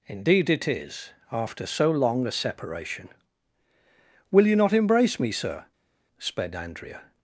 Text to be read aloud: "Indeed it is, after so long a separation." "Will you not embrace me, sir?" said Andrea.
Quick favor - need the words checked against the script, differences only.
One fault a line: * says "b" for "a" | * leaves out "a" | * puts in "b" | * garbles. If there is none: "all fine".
* says "sped" for "said"